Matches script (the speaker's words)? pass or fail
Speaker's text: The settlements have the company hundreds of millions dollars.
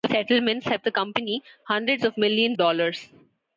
pass